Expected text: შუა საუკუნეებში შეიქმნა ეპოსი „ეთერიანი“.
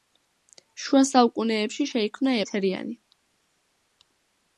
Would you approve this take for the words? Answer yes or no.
no